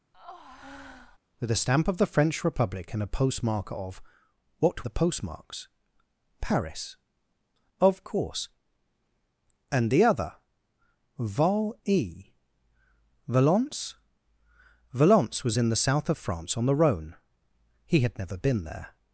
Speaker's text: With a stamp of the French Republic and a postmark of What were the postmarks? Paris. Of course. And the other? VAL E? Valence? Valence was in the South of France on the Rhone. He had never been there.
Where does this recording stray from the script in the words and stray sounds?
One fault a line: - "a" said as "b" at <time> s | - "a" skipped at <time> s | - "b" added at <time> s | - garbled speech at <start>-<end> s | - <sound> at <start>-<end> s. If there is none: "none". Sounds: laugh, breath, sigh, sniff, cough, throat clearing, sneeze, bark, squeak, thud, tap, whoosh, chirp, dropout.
- breath at 0.1-1.2 s
- "were" skipped at 4.9 s